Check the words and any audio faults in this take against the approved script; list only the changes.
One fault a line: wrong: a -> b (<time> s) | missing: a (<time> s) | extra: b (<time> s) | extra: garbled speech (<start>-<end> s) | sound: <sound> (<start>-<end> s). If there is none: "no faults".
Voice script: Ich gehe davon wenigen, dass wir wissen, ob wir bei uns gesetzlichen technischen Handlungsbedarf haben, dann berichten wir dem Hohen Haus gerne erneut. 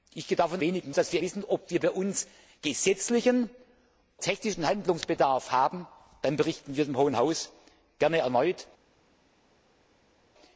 no faults